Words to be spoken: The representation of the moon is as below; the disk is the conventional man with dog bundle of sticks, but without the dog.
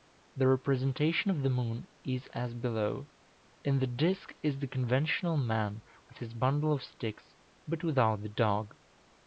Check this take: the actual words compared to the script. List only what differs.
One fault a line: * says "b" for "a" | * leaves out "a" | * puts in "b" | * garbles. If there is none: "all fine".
* puts in "in"
* says "his" for "dog"